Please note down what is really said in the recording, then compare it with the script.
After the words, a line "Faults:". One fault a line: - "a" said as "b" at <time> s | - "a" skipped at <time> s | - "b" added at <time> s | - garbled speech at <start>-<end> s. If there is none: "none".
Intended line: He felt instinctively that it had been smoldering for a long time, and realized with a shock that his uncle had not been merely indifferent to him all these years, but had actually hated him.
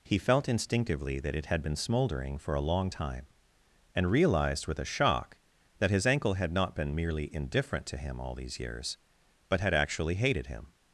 He felt instinctively that it had been smoldering for a long time, and realized with a shock that his ankle had not been merely indifferent to him all these years, but had actually hated him.
Faults:
- "uncle" said as "ankle" at 6.1 s